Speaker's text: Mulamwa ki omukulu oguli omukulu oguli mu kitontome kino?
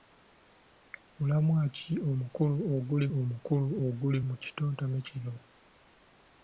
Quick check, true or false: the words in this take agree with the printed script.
true